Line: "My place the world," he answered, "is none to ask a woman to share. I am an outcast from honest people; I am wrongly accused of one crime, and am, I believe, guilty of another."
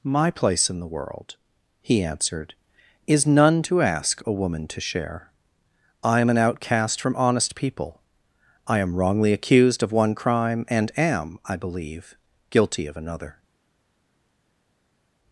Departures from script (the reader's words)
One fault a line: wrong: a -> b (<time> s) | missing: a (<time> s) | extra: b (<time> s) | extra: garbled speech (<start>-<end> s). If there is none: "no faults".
extra: in (0.7 s)